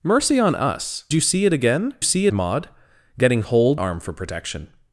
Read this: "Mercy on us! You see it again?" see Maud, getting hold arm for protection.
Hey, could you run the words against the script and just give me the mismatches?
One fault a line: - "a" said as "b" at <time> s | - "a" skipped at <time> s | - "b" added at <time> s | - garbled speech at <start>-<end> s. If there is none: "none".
none